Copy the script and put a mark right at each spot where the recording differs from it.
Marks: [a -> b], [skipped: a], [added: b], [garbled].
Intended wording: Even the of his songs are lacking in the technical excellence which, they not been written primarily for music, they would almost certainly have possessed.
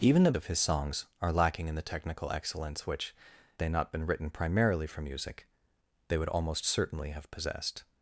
Even the of his songs are lacking in the technical excellence which, they not been written primarily for music, they would almost certainly have possessed.